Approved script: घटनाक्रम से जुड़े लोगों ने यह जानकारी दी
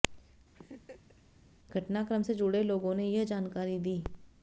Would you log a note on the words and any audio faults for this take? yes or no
yes